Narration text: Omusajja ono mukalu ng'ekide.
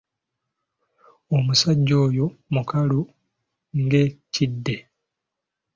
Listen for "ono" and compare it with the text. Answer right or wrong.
wrong